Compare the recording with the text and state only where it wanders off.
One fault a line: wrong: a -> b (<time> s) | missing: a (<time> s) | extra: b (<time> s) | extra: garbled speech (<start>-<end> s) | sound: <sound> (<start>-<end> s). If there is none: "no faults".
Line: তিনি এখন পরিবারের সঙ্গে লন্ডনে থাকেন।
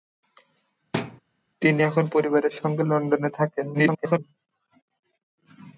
sound: thud (0.9-1.2 s)
extra: garbled speech (3.7-4.2 s)